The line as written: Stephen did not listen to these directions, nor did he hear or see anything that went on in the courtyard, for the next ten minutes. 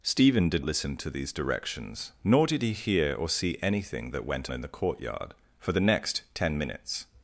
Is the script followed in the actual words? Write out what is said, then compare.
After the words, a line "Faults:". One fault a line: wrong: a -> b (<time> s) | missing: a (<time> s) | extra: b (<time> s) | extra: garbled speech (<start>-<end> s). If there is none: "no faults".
Stephen did listen to these directions, nor did he hear or see anything that went in the courtyard, for the next ten minutes.
Faults:
missing: not (0.7 s)
missing: on (4.5 s)